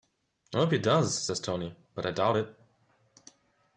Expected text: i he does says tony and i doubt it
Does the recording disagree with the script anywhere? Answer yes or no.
yes